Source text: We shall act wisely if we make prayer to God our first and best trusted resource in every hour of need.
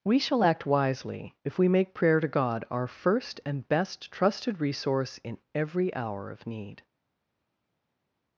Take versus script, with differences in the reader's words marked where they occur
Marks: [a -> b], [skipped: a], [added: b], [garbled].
We shall act wisely if we make prayer to God our first and best trusted resource in every hour of need.